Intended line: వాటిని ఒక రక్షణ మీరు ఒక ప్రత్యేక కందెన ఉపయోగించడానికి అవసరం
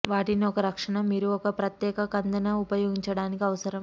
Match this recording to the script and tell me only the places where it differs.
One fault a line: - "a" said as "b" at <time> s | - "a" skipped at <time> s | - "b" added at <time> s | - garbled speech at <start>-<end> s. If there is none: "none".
none